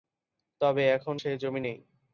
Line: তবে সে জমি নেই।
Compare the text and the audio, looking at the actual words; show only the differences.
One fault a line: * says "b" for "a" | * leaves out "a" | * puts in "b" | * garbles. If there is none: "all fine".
* puts in "এখন"